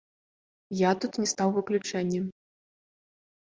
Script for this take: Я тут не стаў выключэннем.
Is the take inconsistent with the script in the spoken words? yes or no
no